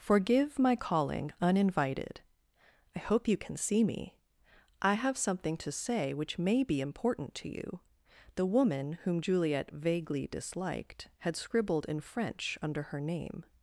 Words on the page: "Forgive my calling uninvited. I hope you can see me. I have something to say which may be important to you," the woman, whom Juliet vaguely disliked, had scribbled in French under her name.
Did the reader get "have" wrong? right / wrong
right